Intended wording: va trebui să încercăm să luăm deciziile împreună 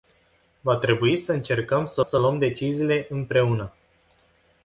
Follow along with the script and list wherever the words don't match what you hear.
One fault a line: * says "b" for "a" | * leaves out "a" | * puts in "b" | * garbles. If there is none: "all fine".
* puts in "să"